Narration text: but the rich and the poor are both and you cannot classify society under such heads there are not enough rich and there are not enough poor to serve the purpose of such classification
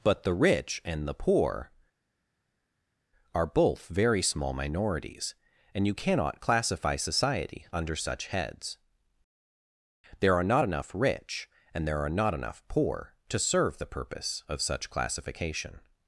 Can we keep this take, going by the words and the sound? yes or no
no